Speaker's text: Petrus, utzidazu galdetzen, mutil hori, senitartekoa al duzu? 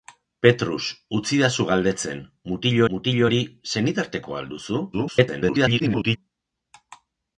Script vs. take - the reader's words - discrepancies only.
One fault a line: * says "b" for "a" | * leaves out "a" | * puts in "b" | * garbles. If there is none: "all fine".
* puts in "mutil"
* garbles